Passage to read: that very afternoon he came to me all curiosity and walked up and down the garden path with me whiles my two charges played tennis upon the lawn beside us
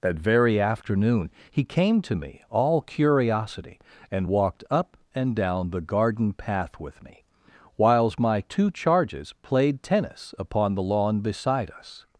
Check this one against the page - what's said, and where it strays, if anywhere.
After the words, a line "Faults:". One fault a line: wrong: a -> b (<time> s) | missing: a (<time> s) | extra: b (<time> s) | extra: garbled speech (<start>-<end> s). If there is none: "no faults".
that very afternoon he came to me all curiosity and walked up and down the garden path with me whiles my two charges played tennis upon the lawn beside us
Faults:
no faults